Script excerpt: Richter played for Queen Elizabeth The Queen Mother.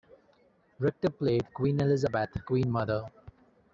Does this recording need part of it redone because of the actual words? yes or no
yes